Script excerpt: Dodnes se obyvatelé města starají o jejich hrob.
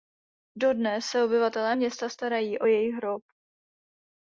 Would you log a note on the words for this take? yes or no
no